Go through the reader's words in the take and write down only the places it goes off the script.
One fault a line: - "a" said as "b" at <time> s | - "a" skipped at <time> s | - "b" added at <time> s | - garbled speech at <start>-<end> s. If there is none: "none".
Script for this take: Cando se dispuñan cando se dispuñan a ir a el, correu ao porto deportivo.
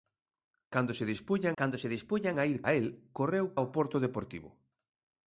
none